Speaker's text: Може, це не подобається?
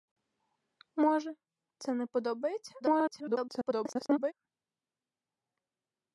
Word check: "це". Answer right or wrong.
right